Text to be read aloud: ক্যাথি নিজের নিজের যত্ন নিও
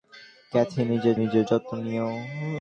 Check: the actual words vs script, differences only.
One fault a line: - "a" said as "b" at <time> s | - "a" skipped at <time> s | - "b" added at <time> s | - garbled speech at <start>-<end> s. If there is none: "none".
none